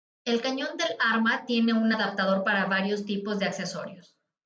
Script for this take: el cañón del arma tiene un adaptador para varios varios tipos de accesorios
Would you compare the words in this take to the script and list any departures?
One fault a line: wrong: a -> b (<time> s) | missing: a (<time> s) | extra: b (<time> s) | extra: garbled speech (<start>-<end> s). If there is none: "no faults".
missing: varios (3.0 s)